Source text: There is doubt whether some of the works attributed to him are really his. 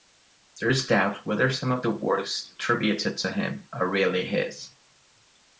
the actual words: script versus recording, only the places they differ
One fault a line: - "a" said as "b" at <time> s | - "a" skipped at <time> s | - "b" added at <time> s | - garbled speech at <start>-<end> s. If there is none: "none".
none